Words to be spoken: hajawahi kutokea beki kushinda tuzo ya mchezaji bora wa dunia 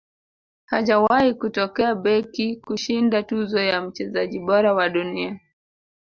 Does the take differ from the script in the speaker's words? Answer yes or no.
no